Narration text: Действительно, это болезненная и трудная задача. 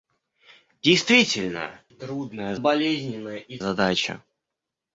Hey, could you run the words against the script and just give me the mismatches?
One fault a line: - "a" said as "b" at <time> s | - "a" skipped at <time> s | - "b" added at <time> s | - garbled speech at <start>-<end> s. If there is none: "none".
- "это" said as "трудная" at 1.9 s
- "трудная" skipped at 3.6 s